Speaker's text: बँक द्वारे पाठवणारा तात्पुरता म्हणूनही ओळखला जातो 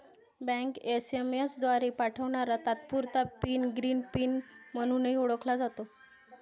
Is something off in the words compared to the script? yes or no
yes